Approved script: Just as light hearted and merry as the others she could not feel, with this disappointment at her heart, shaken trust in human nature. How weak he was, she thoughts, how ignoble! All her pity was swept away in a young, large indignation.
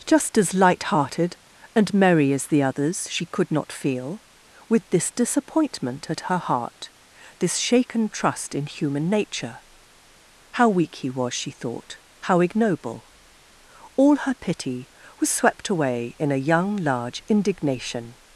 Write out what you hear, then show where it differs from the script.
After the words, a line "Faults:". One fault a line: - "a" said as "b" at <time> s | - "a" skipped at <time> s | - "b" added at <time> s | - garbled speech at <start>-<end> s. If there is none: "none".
Just as light hearted and merry as the others she could not feel, with this disappointment at her heart, this shaken trust in human nature. How weak he was, she thought, how ignoble! All her pity was swept away in a young, large indignation.
Faults:
- "this" added at 7.4 s
- "thoughts" said as "thought" at 11.5 s